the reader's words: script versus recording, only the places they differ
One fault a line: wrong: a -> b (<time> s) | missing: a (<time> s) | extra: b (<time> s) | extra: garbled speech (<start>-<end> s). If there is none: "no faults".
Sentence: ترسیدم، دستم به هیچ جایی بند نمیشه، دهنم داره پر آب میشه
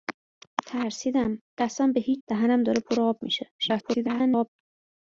missing: جایی بند نمیشه (2.2 s)
extra: garbled speech (3.6-4.5 s)